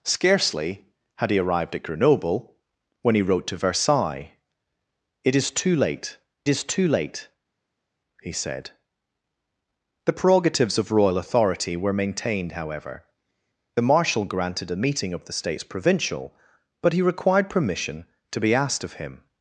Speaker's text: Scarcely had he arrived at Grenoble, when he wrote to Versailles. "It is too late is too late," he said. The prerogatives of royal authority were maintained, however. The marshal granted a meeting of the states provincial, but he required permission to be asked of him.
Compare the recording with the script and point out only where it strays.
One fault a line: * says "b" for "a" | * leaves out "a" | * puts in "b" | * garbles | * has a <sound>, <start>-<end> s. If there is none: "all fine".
all fine